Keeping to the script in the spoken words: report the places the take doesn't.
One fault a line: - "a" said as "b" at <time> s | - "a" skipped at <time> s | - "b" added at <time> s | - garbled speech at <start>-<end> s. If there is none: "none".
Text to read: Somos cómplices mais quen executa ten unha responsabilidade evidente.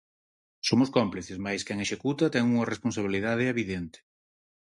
none